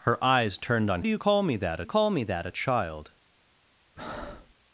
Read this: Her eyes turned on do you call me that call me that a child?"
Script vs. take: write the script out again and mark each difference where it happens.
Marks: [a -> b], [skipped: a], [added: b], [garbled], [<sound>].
Her eyes turned on do you call me that call me that a child?" [breath]